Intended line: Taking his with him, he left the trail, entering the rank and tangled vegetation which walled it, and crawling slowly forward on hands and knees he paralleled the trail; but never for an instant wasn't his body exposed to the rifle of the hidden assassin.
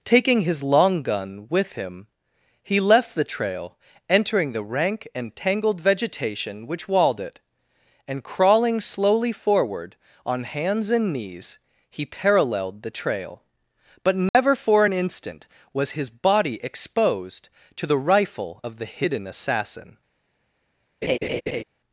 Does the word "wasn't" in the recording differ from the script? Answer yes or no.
yes